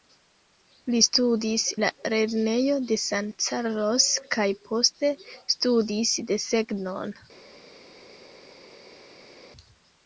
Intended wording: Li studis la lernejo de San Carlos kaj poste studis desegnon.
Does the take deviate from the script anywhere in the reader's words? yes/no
no